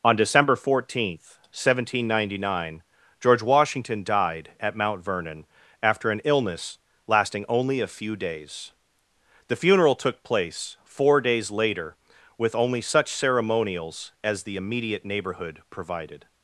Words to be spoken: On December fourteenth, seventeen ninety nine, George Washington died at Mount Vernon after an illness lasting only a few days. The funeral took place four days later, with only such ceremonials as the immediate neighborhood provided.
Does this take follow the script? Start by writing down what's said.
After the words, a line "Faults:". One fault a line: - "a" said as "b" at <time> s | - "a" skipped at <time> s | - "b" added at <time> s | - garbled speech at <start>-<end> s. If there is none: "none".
On December fourteenth, seventeen ninety nine, George Washington died at Mount Vernon after an illness lasting only a few days. The funeral took place four days later, with only such ceremonials as the immediate neighborhood provided.
Faults:
none